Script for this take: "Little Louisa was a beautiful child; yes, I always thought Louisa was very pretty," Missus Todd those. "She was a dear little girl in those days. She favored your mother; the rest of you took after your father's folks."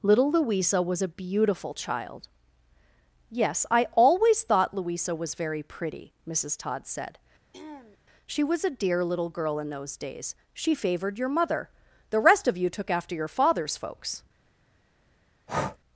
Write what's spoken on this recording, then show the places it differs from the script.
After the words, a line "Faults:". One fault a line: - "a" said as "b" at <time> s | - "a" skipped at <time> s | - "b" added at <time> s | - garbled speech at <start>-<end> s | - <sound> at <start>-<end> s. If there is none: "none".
"Little Louisa was a beautiful child; yes, I always thought Louisa was very pretty," Missus Todd said. "She was a dear little girl in those days. She favored your mother; the rest of you took after your father's folks."
Faults:
- "those" said as "said" at 6.9 s
- throat clearing at 7.5-8.0 s
- breath at 15.5-15.8 s